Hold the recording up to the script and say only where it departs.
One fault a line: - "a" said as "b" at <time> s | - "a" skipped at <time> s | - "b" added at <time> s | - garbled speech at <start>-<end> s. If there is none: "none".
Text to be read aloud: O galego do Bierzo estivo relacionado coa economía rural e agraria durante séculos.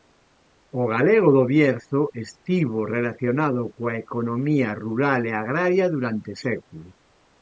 none